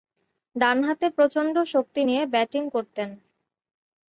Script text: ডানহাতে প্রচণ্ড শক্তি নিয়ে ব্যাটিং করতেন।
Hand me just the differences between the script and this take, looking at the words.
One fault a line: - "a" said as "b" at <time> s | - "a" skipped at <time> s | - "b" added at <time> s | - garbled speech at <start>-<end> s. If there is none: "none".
none